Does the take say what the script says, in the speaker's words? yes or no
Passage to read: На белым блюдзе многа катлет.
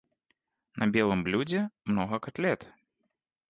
yes